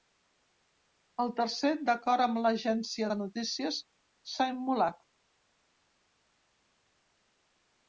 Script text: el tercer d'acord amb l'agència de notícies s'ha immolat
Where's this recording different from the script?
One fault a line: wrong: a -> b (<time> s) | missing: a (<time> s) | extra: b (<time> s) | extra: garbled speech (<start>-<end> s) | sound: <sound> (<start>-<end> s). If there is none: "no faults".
no faults